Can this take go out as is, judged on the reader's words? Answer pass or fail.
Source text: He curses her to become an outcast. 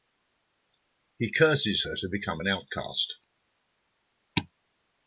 pass